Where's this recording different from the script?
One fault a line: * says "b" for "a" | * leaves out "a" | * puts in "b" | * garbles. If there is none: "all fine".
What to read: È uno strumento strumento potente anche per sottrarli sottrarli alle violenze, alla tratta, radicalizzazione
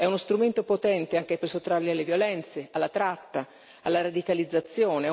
* leaves out "strumento"
* leaves out "sottrarli"
* puts in "alla"